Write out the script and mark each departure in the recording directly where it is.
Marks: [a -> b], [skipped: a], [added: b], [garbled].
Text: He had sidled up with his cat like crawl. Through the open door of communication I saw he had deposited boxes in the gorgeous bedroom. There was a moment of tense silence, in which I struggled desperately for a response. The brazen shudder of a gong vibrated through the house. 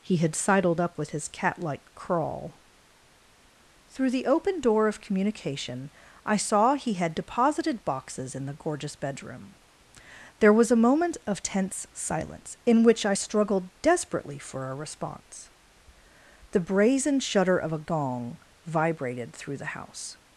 He had sidled up with his cat like crawl. Through the open door of communication I saw he had deposited boxes in the gorgeous bedroom. There was a moment of tense silence, in which I struggled desperately for a response. The brazen shudder of a gong vibrated through the house.